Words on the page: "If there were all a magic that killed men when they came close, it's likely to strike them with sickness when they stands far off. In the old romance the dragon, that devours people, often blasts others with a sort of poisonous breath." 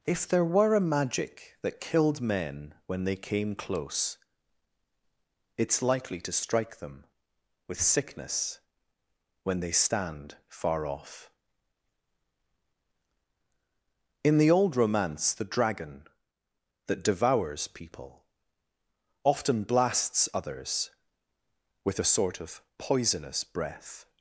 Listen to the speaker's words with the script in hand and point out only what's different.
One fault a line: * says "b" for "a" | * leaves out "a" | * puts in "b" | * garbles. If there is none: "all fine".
* leaves out "all"
* says "stand" for "stands"